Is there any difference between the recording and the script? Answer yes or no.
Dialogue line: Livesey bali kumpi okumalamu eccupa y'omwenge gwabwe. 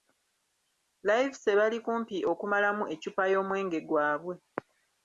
no